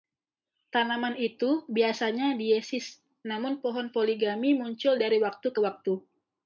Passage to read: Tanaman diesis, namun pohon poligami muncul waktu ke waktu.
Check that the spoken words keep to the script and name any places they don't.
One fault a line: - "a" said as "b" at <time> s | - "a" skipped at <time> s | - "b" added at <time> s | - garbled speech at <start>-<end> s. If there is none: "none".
- "itu biasanya" added at 1.1 s
- "dari" added at 5.0 s